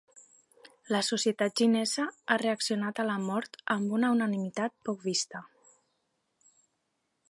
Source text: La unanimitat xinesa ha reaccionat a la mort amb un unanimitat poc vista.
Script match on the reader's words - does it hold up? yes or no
no